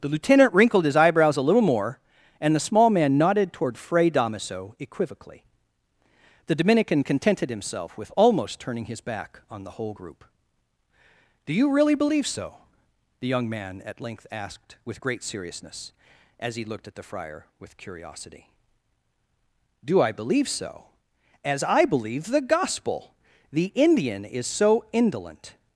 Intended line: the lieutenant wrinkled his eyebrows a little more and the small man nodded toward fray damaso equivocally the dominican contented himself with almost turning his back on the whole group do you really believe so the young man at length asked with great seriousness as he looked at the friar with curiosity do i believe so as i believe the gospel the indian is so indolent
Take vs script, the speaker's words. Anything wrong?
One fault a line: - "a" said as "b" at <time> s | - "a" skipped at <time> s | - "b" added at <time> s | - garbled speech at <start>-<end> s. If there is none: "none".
none